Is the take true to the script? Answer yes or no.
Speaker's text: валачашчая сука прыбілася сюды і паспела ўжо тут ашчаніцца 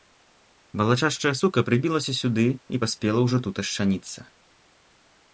yes